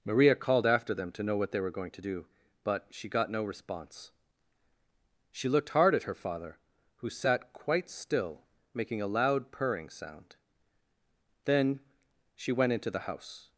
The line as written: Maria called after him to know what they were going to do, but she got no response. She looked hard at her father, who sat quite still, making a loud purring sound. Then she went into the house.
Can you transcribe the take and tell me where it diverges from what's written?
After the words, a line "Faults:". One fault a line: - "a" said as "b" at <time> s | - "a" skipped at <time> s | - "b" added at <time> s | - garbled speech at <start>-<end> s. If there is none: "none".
Maria called after them to know what they were going to do, but she got no response. She looked hard at her father, who sat quite still, making a loud purring sound. Then she went into the house.
Faults:
- "him" said as "them" at 0.9 s